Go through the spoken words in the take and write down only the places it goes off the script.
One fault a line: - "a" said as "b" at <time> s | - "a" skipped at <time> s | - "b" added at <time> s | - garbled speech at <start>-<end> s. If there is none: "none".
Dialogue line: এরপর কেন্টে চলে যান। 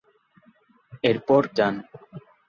- "কেন্টে চলে" skipped at 1.4 s